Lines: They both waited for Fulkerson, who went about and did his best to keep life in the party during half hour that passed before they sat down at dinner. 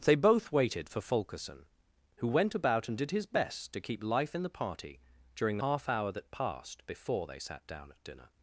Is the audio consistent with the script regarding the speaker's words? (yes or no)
yes